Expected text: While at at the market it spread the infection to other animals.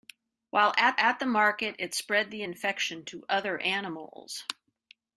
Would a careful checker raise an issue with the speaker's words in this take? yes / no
no